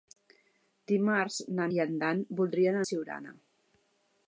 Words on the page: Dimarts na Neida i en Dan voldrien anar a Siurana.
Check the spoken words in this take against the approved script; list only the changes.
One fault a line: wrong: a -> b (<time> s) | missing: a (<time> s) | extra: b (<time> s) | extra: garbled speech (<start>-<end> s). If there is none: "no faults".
missing: Neida (1.7 s)
missing: anar (2.8 s)